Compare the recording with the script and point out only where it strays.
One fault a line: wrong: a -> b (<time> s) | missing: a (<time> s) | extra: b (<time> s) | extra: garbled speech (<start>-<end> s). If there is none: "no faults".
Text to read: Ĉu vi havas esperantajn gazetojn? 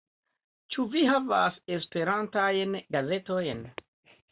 no faults